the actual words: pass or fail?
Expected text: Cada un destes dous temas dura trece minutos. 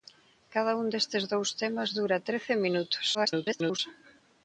fail